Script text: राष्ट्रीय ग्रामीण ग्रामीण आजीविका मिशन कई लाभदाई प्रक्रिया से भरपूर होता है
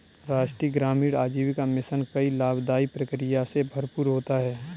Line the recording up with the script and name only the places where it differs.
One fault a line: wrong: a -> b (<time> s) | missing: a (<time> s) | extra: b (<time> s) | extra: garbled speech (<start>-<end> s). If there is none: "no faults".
missing: ग्रामीण (1.1 s)